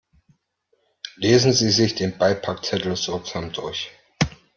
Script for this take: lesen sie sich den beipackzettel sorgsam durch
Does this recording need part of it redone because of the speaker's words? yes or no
no